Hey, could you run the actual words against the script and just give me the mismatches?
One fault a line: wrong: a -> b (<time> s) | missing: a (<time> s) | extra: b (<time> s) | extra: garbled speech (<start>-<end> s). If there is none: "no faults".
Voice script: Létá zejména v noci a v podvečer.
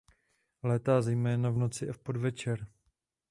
no faults